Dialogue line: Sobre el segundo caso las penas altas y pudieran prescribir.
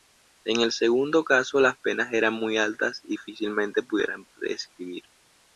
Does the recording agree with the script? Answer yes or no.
no